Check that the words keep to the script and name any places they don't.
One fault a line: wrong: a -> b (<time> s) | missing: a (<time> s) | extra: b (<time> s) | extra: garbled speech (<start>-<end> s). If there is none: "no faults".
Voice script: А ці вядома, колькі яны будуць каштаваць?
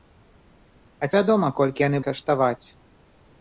missing: ці (1.1 s)
missing: будуць (2.0 s)